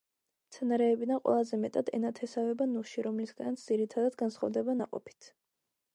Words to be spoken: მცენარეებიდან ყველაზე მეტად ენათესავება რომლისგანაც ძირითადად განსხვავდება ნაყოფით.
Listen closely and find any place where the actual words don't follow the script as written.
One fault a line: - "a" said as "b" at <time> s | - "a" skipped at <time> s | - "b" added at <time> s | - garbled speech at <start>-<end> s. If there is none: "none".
- "ნუში" added at 2.7 s